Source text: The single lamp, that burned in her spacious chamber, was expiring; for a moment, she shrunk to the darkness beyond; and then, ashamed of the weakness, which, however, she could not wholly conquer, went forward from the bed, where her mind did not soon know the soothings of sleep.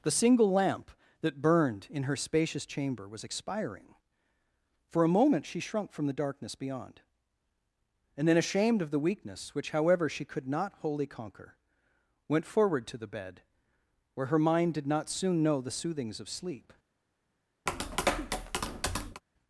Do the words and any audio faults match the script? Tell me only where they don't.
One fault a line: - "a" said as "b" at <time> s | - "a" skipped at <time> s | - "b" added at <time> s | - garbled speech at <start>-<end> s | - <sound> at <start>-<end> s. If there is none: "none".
- "to" said as "from" at 5.9 s
- "from" said as "to" at 12.9 s
- tap at 17.7-19.2 s